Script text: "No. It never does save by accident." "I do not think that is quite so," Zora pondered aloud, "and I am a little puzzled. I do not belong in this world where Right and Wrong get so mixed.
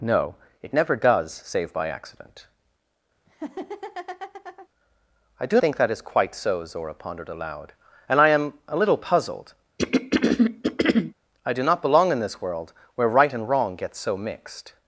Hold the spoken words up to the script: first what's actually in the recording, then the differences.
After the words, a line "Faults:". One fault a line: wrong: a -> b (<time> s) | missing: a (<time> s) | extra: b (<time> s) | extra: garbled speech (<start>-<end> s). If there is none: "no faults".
"No. It never does save by accident." "I do think that is quite so," Zora pondered aloud, "and I am a little puzzled. I do not belong in this world where Right and Wrong get so mixed.
Faults:
missing: not (5.6 s)